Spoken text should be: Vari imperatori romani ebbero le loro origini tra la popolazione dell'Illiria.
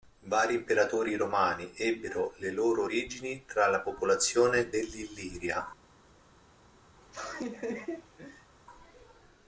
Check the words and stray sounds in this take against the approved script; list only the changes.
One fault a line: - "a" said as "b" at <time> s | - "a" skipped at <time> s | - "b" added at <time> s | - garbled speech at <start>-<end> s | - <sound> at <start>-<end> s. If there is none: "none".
- laugh at 7.0-8.5 s